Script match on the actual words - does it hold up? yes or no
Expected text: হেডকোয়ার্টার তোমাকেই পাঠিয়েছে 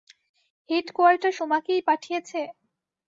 yes